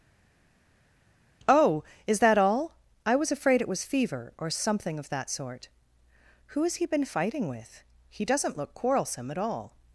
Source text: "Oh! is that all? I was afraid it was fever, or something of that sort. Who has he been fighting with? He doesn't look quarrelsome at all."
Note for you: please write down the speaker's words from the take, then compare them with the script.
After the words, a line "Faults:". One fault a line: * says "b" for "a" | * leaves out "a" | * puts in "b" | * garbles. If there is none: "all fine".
"Oh! is that all? I was afraid it was fever, or something of that sort. Who has he been fighting with? He doesn't look quarrelsome at all."
Faults:
all fine